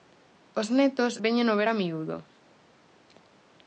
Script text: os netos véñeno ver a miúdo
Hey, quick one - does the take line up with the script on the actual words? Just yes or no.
yes